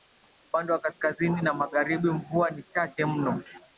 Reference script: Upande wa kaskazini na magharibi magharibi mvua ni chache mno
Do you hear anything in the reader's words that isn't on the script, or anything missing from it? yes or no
yes